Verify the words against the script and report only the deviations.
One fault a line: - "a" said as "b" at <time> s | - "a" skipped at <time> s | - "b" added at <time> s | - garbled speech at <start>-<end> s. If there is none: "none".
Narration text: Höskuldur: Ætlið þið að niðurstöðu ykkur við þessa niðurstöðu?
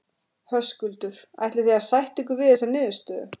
- "niðurstöðu" said as "sætta" at 1.9 s